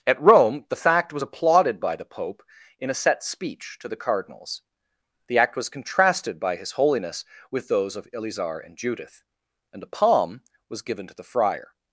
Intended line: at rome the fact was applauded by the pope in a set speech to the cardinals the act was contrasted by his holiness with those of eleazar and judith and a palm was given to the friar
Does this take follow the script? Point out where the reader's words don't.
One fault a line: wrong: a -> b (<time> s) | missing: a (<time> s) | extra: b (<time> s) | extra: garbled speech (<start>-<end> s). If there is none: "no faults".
no faults